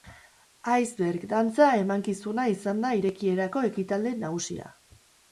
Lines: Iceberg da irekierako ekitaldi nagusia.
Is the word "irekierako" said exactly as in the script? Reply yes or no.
yes